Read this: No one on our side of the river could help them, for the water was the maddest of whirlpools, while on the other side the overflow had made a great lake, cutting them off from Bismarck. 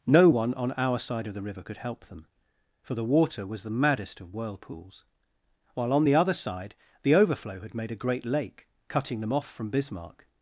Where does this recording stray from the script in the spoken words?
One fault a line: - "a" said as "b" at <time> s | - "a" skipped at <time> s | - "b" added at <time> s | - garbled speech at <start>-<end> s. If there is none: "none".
none